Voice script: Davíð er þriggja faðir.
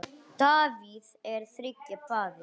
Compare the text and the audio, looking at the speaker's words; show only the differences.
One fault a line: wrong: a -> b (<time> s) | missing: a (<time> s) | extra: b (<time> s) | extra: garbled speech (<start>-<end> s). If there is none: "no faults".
no faults